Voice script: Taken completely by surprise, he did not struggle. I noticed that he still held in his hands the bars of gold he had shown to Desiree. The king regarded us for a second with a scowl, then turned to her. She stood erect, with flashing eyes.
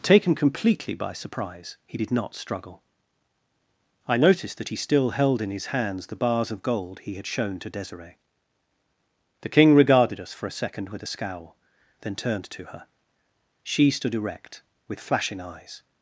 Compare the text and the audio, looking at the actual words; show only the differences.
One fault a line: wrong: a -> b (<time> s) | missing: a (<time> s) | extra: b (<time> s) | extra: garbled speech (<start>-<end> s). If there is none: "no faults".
no faults